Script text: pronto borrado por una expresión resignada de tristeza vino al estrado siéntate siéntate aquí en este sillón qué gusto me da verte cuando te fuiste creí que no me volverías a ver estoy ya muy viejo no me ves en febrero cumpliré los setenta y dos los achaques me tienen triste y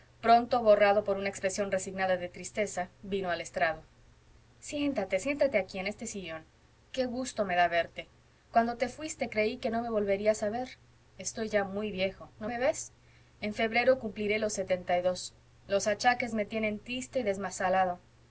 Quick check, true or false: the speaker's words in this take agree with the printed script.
true